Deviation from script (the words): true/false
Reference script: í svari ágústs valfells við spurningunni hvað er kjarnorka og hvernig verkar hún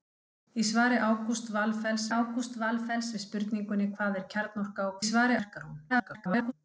true